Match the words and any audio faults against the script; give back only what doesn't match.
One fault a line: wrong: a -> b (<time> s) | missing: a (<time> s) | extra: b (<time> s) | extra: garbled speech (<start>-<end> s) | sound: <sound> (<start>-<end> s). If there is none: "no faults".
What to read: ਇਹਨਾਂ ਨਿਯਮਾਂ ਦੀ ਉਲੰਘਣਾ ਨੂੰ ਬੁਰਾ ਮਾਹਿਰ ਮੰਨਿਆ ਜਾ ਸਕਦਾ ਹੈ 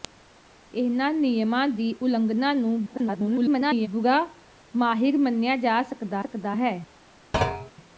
extra: garbled speech (2.9-3.9 s)
extra: ਸਕਦਾ (6.2 s)
sound: thud (7.3-7.7 s)